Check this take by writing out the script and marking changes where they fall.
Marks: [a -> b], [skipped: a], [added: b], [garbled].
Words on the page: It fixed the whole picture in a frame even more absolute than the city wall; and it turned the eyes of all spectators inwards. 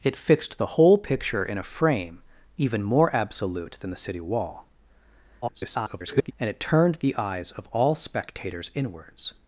It fixed the whole picture in a frame even more absolute than the city wall; [garbled] and it turned the eyes of all spectators inwards.